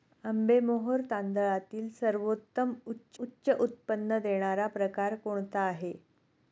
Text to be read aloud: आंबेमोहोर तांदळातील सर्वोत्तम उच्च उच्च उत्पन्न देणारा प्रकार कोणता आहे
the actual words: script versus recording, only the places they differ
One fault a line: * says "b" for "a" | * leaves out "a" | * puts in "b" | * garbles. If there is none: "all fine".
all fine